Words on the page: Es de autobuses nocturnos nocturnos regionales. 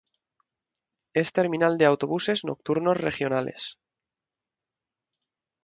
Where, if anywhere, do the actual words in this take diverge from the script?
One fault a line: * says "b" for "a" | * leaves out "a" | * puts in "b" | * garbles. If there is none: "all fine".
* puts in "terminal"
* leaves out "nocturnos"